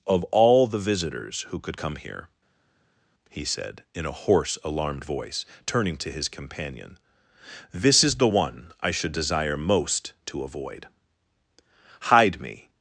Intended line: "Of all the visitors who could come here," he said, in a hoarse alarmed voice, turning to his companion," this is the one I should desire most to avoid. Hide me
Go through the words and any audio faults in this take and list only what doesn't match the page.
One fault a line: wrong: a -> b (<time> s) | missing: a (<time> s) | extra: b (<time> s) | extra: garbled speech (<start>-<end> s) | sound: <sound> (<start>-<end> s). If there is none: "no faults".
no faults